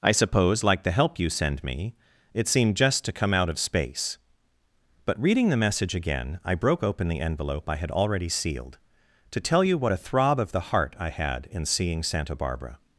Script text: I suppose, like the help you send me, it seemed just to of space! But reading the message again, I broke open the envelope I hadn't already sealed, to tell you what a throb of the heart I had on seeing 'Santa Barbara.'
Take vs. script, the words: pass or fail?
fail